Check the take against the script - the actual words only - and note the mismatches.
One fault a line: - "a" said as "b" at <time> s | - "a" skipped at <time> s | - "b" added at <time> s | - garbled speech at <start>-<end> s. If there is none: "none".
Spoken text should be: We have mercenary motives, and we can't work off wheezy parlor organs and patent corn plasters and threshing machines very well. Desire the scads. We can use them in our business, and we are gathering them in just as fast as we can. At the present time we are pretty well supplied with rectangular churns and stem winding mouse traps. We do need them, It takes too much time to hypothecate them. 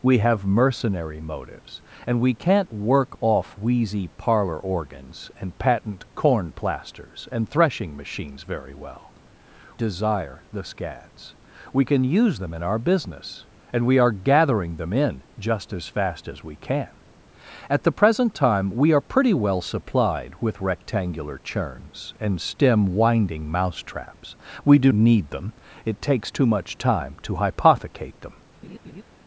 none